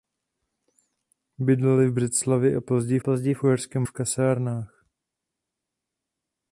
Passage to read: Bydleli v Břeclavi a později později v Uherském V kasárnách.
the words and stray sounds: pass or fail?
pass